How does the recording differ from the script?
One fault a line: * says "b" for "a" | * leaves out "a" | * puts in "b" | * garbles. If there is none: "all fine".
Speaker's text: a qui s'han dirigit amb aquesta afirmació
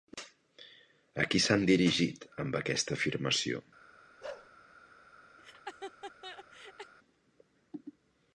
all fine